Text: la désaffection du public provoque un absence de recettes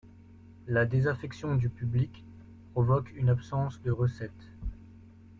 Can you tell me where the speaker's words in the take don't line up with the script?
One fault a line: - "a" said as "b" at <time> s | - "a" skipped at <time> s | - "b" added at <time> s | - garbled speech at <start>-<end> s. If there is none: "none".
- "un" said as "une" at 3.1 s